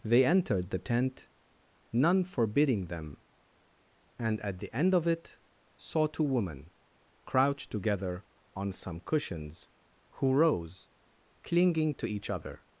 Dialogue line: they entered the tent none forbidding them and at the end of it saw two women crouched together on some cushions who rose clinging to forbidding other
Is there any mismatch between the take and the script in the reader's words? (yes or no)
yes